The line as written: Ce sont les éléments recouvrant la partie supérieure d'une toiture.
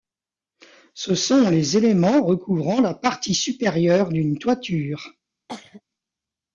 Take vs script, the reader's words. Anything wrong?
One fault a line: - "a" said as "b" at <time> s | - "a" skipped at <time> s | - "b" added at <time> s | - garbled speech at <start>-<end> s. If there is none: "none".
none